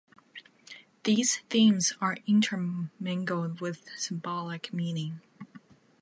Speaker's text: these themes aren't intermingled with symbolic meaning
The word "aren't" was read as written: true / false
false